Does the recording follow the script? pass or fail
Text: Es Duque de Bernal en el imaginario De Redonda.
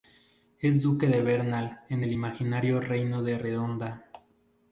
fail